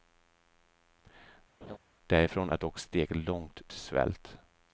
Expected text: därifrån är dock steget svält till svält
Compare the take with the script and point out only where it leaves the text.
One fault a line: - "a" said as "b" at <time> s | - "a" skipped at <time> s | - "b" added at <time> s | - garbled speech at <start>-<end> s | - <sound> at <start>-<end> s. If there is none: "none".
- laugh at 1.6-1.8 s
- "svält" said as "långt" at 3.2 s